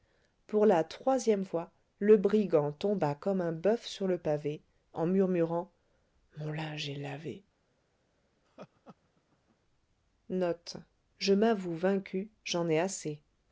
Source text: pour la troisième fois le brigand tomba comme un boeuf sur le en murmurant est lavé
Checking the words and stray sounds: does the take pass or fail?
fail